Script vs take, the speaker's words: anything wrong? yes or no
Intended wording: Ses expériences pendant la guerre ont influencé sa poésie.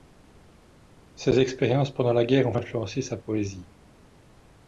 no